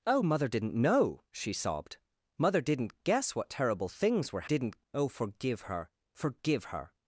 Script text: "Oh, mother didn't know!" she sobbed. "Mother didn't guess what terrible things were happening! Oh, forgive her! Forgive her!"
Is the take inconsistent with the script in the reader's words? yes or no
yes